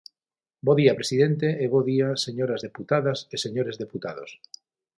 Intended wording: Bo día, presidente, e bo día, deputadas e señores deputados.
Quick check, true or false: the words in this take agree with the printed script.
false